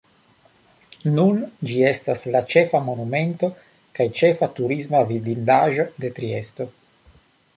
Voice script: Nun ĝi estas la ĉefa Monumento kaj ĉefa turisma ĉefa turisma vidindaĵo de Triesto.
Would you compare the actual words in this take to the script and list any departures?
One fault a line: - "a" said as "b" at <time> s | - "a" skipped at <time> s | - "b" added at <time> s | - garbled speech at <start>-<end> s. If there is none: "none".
- "ĉefa turisma" skipped at 5.0 s